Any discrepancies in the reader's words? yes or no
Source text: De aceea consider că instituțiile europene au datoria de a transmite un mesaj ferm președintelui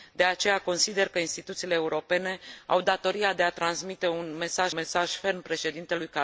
yes